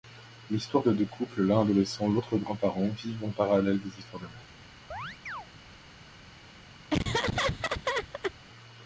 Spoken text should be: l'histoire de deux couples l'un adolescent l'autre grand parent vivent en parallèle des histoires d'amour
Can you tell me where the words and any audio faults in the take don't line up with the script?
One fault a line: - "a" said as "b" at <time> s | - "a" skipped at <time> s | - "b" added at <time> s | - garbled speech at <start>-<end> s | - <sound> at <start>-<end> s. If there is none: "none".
- chirp at 4.9-5.5 s
- laugh at 6.9-8.3 s